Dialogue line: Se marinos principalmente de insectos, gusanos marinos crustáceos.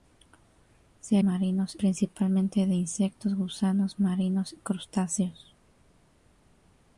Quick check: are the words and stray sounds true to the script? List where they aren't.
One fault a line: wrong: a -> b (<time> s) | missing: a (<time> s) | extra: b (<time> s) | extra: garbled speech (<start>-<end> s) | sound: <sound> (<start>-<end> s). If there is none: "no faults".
no faults